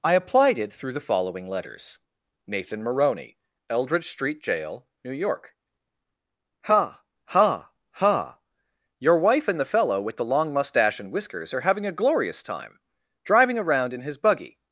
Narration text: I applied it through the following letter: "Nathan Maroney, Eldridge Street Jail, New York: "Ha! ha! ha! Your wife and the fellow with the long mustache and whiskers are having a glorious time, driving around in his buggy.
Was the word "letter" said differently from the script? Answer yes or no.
yes